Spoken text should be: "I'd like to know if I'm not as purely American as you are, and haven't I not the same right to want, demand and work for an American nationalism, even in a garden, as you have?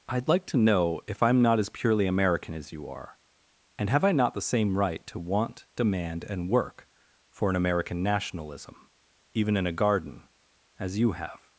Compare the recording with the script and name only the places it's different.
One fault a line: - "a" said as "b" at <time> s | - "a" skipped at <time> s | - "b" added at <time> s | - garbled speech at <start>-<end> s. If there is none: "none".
- "haven't" said as "have" at 3.9 s